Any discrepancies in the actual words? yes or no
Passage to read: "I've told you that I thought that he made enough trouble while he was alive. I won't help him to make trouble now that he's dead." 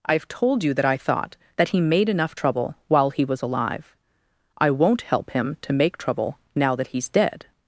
no